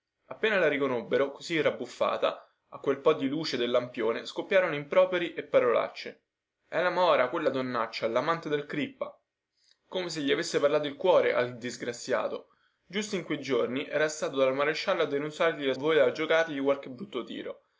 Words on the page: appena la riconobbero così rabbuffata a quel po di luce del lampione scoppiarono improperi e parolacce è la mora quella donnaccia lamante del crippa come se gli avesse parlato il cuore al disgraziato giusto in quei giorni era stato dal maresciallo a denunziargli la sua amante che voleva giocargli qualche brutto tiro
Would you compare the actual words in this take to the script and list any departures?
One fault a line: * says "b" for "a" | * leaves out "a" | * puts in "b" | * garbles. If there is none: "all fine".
* leaves out "sua amante che"